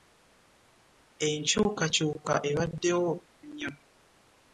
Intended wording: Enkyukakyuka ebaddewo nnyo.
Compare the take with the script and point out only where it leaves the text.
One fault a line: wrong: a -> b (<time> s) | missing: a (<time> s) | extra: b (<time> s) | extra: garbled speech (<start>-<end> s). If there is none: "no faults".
no faults